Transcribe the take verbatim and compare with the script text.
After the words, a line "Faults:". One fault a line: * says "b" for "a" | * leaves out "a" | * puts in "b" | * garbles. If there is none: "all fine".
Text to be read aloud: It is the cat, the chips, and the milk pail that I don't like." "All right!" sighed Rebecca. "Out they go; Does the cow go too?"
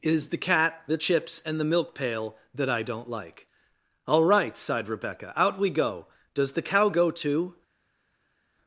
It is the cat, the chips, and the milk pail that I don't like." "All right!" sighed Rebecca. "Out we go; Does the cow go too?"
Faults:
* says "we" for "they"